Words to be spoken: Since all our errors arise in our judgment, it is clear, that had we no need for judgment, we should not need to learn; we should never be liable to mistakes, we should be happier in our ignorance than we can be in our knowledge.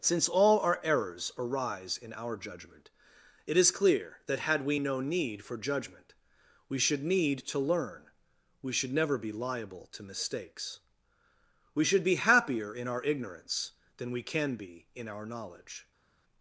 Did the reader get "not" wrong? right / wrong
wrong